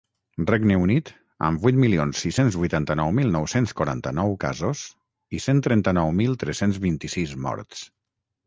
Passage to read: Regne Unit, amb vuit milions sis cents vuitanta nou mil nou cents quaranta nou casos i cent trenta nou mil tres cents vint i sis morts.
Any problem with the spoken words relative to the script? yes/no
no